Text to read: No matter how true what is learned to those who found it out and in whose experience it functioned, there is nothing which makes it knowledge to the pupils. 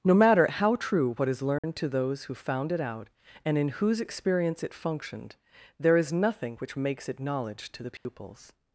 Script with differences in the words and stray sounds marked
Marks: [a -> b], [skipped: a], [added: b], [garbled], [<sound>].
No matter how true what is learned [dropout] to those who found it out and in whose experience it functioned, there is nothing which makes it knowledge to the pupils. [dropout]